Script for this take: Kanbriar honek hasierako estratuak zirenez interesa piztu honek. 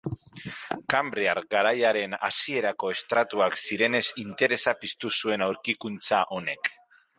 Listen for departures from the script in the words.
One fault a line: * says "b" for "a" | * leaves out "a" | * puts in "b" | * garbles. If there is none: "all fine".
* says "garaiaren" for "honek"
* puts in "zuen aurkikuntza"